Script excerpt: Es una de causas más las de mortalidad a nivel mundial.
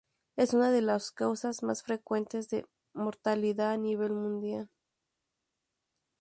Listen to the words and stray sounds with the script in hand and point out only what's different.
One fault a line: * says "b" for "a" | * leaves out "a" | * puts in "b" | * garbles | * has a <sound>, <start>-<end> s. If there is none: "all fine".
* puts in "las"
* says "frecuentes" for "las"